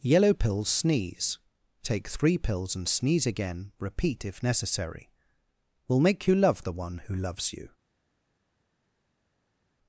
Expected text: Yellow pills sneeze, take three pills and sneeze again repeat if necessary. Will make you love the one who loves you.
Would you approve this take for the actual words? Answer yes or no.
yes